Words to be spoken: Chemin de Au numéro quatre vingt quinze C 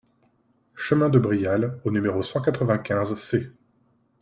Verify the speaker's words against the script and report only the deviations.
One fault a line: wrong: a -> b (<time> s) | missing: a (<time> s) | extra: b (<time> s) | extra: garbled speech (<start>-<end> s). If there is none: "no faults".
extra: Brial (1.2 s)
extra: cent (2.2 s)